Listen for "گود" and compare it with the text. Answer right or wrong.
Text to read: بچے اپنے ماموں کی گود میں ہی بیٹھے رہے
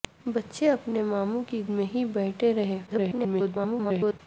wrong